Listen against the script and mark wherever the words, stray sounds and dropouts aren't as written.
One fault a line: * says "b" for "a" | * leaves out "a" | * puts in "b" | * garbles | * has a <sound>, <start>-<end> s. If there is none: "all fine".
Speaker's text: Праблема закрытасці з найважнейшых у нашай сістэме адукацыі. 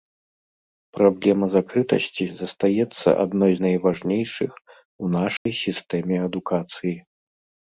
* puts in "застаецца адной"
* has a dropout, 5.4-5.5 s